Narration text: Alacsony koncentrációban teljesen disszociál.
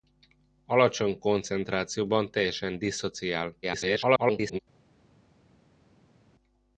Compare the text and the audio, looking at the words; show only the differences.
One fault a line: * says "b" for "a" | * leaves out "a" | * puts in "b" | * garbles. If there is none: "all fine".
* garbles